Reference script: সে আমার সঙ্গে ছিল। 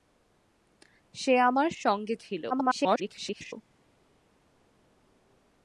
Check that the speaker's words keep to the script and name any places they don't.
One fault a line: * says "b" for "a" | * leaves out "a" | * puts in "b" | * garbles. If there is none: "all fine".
* garbles